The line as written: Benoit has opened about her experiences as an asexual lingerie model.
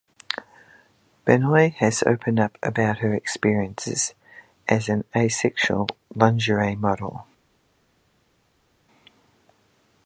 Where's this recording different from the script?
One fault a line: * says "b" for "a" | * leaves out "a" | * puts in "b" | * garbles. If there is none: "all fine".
* puts in "up"